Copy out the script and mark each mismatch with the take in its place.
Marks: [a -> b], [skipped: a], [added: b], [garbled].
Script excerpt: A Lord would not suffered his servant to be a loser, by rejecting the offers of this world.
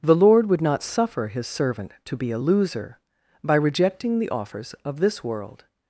[A -> The] Lord would not [suffered -> suffer] his servant to be a loser, by rejecting the offers of this world.